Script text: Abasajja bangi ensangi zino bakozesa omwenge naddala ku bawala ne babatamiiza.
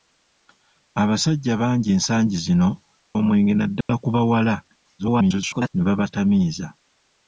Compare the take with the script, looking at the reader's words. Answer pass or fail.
fail